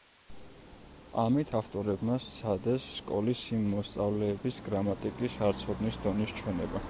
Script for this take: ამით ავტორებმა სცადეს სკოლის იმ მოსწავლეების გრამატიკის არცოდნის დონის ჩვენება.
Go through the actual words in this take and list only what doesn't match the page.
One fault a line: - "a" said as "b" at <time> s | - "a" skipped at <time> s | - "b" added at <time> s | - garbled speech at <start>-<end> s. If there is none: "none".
none